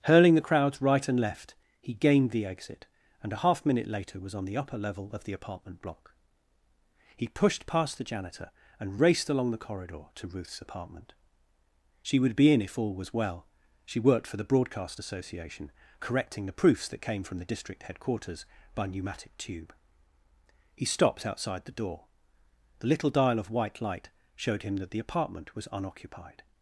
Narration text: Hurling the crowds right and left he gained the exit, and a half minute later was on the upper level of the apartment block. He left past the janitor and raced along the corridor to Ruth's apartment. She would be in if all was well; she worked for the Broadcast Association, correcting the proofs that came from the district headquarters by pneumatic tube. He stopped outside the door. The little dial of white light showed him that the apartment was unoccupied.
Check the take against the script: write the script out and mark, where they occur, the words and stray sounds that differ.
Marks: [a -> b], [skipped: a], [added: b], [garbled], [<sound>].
Hurling the crowds right and left he gained the exit, and a half minute later was on the upper level of the apartment block. He [left -> pushed] past the janitor and raced along the corridor to Ruth's apartment. She would be in if all was well; she worked for the Broadcast Association, correcting the proofs that came from the district headquarters by pneumatic tube. He stopped outside the door. The little dial of white light showed him that the apartment was unoccupied.